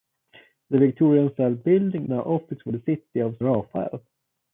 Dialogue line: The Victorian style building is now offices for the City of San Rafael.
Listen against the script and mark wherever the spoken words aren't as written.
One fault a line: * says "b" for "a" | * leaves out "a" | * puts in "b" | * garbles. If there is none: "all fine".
* leaves out "is"
* leaves out "San"